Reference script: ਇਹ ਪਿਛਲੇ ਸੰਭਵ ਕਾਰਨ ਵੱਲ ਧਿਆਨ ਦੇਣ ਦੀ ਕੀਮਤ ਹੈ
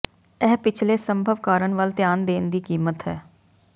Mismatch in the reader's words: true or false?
false